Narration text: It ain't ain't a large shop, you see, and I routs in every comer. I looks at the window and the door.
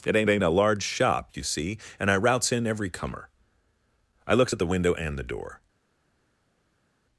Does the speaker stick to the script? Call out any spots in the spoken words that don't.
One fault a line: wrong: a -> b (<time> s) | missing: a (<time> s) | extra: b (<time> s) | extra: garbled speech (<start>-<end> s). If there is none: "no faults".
no faults